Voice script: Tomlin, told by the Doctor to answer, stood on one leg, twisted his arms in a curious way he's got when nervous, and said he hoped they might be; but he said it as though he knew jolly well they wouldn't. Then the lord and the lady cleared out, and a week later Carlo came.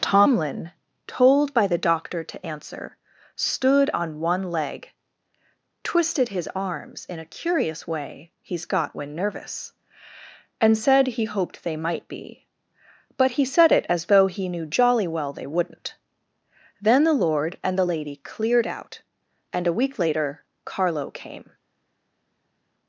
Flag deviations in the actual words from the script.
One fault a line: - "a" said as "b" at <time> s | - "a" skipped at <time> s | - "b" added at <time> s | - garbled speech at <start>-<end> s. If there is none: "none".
none